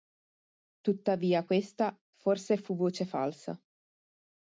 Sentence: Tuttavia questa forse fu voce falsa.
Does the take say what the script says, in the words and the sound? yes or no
yes